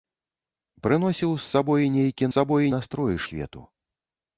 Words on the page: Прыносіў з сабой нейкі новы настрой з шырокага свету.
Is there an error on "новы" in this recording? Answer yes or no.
yes